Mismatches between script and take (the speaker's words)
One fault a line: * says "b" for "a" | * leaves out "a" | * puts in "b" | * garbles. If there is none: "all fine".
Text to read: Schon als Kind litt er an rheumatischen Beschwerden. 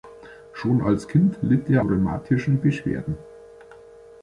* leaves out "an"